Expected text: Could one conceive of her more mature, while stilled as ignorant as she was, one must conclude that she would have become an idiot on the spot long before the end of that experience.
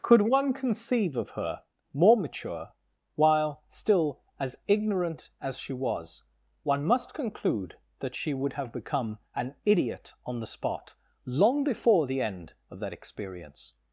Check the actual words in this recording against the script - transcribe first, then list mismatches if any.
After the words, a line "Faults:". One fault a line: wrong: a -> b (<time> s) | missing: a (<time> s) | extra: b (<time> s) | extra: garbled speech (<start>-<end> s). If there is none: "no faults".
Could one conceive of her more mature, while still as ignorant as she was, one must conclude that she would have become an idiot on the spot long before the end of that experience.
Faults:
wrong: stilled -> still (3.7 s)